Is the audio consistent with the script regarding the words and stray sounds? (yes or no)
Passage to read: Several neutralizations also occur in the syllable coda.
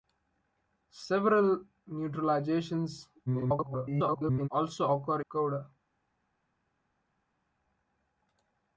no